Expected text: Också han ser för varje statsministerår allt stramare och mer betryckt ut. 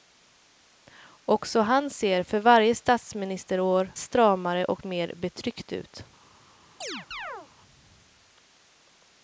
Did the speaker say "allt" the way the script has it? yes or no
no